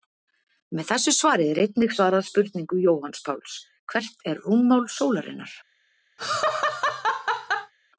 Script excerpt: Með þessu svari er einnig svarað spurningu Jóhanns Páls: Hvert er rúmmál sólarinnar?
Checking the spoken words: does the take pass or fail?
pass